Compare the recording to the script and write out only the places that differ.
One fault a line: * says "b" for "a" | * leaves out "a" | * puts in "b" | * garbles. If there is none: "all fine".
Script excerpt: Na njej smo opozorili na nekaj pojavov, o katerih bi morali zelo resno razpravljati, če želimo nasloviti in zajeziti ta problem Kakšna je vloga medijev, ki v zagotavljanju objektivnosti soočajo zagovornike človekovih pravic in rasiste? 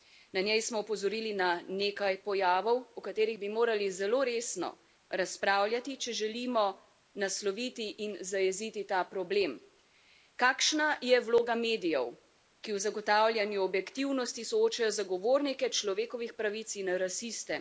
all fine